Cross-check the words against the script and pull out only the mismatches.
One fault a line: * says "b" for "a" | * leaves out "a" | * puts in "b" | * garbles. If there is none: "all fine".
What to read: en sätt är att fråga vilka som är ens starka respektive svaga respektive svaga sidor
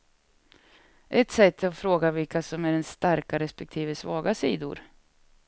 * says "ett" for "en"
* leaves out "respektive svaga"